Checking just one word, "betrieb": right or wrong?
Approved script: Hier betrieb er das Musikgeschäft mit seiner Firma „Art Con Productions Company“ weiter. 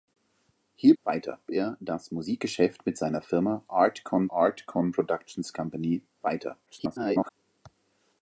wrong